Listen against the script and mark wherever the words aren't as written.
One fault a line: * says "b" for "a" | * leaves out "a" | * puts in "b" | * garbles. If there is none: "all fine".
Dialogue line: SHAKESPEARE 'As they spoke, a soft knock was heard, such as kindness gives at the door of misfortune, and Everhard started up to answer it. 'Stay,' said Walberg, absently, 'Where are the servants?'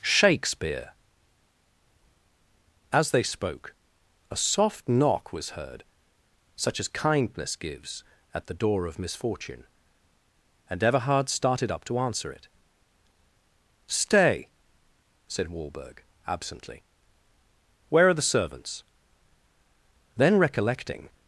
* puts in "Then recollecting"